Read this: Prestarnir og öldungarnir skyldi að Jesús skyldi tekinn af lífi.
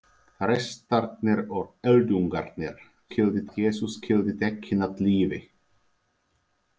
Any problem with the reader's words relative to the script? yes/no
no